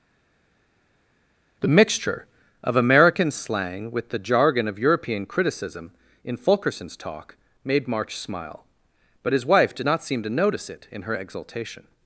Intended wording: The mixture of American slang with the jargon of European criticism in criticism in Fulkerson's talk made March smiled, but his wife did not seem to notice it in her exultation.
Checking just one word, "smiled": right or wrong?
wrong